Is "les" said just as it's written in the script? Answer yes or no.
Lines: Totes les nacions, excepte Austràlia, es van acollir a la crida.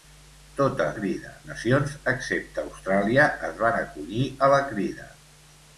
no